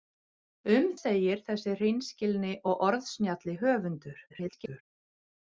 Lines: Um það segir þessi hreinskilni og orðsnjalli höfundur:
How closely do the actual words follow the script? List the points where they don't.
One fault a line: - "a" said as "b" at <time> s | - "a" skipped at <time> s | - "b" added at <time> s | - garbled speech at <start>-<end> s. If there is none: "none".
- "það" skipped at 0.9 s
- garbled speech at 4.3-4.8 s